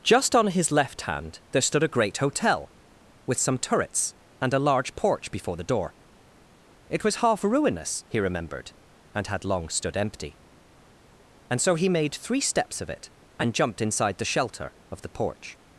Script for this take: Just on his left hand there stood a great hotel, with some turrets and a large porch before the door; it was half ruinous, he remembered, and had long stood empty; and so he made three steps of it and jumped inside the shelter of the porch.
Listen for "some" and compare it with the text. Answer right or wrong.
right